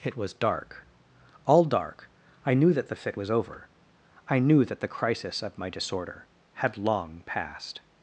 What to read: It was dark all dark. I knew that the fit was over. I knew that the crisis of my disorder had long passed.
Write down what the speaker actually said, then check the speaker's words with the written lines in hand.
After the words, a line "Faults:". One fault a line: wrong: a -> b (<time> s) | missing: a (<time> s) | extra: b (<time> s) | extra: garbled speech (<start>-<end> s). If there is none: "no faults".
It was dark all dark. I knew that the fit was over. I knew that the crisis of my disorder had long passed.
Faults:
no faults